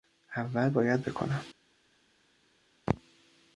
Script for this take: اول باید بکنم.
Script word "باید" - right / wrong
right